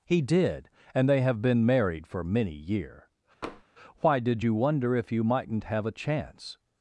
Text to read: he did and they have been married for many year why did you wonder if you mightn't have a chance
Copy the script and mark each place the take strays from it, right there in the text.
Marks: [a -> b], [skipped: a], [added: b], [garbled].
he did and they have been married for many year why did you wonder if you mightn't have a chance